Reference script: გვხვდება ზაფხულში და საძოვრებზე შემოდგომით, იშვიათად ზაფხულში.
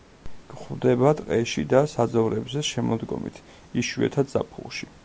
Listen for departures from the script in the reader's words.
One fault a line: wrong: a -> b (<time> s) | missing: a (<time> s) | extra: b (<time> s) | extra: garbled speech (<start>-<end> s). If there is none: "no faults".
wrong: ზაფხულში -> ტყეში (1.2 s)